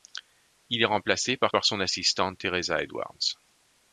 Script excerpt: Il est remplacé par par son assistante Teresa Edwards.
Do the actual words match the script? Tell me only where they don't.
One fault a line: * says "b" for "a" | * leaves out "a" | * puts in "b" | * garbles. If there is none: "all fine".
all fine